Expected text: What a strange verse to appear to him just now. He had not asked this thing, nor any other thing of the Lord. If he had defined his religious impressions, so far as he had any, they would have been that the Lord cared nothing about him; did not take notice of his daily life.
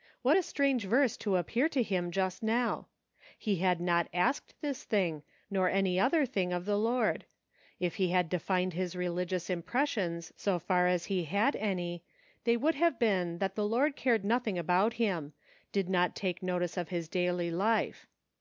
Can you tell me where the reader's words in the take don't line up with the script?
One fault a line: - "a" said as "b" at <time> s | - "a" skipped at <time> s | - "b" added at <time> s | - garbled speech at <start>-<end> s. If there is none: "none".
none